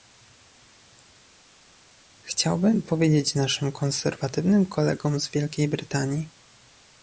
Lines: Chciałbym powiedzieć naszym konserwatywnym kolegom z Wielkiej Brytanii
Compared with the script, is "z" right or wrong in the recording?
right